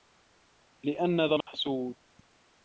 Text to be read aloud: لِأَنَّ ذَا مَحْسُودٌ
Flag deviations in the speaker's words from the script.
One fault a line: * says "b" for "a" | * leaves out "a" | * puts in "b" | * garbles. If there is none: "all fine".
all fine